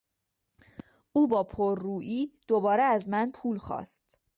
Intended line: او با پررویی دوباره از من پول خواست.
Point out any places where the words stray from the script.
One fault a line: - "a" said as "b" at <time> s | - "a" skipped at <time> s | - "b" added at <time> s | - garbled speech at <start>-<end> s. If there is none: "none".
none